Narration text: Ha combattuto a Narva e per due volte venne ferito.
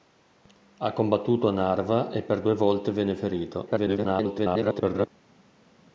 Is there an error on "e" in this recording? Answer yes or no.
no